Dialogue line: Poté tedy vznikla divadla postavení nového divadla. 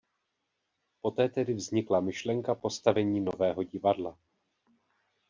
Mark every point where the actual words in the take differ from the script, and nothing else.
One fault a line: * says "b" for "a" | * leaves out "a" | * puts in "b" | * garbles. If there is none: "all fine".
* says "myšlenka" for "divadla"